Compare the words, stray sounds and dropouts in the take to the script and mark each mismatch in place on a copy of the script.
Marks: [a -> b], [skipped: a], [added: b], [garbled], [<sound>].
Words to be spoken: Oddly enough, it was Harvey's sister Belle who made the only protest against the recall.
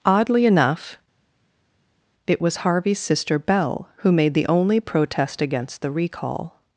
Oddly enough, it was Harvey's sister Belle who made the only protest against the recall.